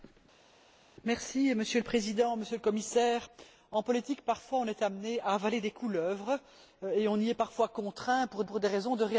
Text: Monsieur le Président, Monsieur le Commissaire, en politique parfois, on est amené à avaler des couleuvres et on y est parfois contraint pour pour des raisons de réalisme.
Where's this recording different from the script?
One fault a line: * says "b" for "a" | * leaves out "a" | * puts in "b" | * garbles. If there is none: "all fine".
all fine